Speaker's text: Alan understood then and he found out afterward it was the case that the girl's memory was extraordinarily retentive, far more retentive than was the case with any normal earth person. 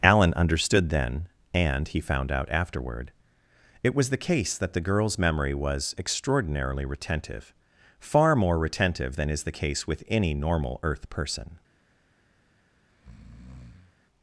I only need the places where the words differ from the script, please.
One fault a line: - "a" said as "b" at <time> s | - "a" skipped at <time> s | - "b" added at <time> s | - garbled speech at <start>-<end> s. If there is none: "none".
- "was" said as "is" at 9.3 s